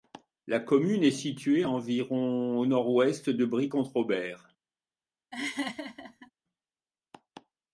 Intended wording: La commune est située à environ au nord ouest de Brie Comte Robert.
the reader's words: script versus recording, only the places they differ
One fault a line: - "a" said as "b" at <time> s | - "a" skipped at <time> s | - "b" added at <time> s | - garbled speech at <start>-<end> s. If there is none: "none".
none